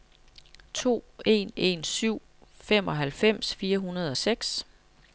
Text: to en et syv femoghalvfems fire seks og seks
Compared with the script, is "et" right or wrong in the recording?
wrong